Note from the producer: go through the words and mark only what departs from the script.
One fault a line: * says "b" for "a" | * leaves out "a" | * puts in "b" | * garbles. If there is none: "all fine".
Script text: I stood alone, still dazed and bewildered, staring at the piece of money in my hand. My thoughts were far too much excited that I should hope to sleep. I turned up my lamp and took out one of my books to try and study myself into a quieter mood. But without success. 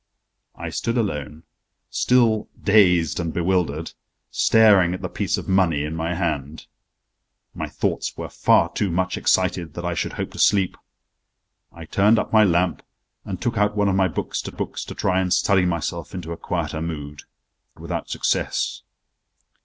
* puts in "books to"
* leaves out "But"